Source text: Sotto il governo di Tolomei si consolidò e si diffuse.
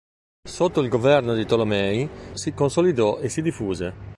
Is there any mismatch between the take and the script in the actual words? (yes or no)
no